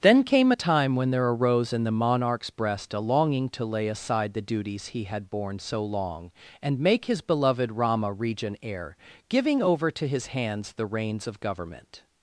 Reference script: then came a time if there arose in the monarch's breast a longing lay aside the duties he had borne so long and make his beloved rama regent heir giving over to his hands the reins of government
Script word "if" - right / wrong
wrong